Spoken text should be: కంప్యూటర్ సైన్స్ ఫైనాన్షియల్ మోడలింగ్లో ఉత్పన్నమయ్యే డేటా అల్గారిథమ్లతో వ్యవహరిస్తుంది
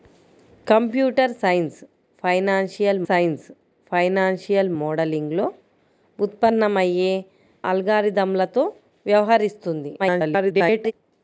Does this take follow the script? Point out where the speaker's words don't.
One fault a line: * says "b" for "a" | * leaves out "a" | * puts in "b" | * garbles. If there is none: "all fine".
* puts in "సైన్స్ ఫైనాన్షియల్"
* leaves out "డేటా"
* garbles